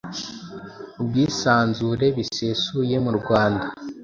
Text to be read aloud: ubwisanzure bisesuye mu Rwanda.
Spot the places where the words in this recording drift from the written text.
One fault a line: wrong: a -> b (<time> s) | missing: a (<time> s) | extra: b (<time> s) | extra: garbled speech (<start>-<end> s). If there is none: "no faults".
no faults